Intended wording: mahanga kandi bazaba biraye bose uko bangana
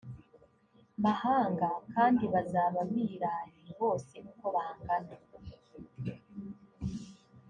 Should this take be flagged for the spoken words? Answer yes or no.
no